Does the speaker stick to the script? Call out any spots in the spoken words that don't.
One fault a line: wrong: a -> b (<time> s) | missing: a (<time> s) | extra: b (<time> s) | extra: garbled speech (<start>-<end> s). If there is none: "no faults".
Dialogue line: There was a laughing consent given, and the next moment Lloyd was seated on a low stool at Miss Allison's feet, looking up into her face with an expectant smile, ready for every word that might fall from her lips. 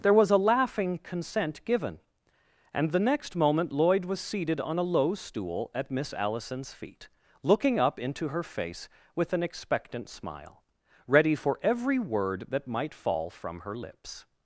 no faults